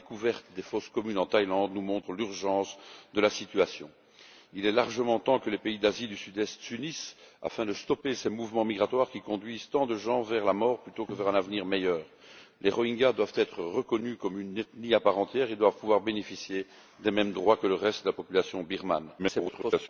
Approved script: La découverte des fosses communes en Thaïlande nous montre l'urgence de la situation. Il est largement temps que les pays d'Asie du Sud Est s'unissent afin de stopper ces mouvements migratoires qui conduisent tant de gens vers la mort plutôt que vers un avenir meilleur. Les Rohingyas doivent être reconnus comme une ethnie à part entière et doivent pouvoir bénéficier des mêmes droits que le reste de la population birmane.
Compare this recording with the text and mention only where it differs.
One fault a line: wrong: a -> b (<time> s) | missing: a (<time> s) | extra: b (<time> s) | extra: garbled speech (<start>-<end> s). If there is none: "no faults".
extra: garbled speech (19.2-19.9 s)